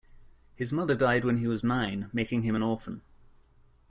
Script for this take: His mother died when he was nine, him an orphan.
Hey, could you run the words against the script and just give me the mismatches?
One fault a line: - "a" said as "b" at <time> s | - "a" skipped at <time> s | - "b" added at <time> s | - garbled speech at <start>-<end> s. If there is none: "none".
- "making" added at 2.1 s